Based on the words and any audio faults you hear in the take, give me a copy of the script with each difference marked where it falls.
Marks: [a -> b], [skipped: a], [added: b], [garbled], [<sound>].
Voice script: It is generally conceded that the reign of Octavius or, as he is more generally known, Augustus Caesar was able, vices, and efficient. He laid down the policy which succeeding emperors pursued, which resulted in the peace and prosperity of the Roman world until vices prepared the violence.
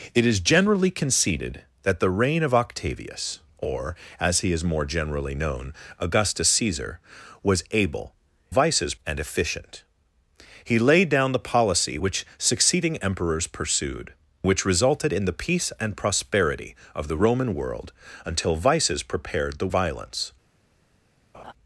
It is generally conceded that the reign of Octavius or, as he is more generally known, Augustus Caesar was able, vices, and efficient. He laid down the policy which succeeding emperors pursued, which resulted in the peace and prosperity of the Roman world until vices prepared the violence. [laugh]